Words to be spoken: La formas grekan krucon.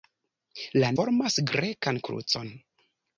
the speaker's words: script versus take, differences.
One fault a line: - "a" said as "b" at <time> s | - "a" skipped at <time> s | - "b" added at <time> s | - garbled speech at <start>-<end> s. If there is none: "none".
none